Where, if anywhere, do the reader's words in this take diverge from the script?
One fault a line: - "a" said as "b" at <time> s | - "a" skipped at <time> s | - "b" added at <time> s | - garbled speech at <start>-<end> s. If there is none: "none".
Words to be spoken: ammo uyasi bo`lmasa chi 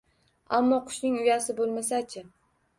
- "qushning" added at 0.9 s